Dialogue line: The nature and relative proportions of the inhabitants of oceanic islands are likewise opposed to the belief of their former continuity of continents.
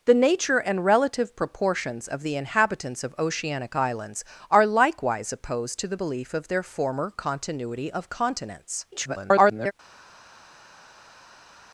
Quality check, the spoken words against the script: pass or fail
fail